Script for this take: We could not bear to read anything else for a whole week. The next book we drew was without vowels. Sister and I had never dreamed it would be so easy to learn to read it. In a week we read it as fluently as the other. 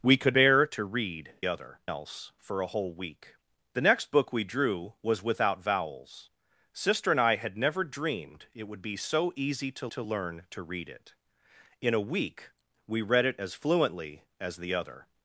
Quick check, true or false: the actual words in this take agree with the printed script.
false